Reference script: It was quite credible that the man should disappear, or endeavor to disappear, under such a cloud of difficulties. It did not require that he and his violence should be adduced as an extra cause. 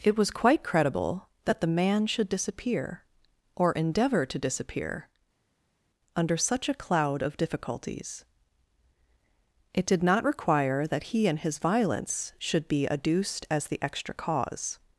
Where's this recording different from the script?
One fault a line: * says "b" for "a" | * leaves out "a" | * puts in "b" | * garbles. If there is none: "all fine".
* says "the" for "an"